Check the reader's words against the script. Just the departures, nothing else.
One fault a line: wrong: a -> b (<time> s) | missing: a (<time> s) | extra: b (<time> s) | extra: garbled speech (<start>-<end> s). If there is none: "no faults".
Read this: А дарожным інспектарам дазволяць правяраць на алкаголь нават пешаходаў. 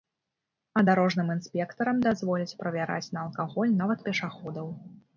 no faults